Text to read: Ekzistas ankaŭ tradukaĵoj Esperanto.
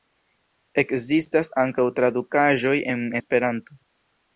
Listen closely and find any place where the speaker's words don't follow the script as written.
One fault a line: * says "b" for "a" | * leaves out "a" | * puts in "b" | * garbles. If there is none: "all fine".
* puts in "en"